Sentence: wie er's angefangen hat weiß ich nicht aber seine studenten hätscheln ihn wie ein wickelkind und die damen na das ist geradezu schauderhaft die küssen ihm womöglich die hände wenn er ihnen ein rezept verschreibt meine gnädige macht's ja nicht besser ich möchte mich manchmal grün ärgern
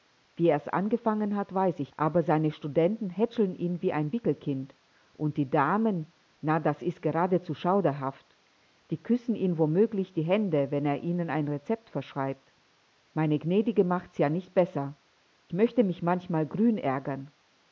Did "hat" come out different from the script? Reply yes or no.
no